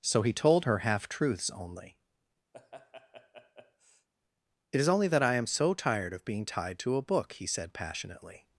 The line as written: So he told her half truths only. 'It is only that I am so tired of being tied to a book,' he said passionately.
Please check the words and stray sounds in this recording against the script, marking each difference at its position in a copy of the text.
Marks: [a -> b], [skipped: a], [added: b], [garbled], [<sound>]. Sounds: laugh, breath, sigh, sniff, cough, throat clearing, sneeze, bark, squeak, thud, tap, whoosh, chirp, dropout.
So he told her half truths only. [laugh] 'It is only that I am so tired of being tied to a book,' he said passionately.